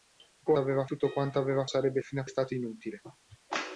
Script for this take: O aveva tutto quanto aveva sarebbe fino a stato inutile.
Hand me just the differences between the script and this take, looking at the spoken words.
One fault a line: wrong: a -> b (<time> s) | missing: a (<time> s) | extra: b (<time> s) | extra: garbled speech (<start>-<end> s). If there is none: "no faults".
no faults